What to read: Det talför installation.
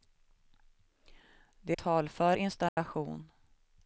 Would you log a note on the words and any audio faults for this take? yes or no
yes